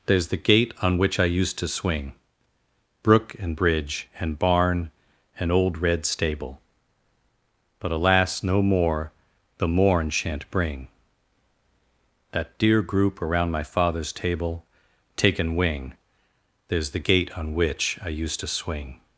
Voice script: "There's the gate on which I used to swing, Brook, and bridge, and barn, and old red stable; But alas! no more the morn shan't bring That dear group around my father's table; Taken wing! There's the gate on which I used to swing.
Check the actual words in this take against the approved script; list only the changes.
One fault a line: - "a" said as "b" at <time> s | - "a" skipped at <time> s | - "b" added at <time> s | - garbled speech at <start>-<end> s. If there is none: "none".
none